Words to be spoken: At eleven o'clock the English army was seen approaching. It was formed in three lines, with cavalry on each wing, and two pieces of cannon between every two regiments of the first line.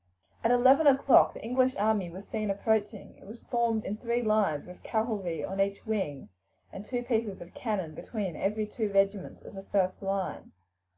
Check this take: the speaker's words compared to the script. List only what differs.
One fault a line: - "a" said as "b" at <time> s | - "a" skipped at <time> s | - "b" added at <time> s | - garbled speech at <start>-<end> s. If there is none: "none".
none